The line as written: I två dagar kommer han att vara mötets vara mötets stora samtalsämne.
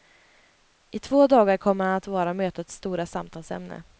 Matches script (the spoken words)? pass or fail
fail